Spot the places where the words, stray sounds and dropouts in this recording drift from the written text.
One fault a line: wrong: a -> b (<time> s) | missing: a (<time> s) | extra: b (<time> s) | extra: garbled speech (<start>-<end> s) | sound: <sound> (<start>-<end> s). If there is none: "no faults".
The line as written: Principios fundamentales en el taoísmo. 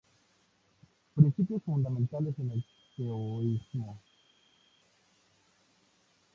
no faults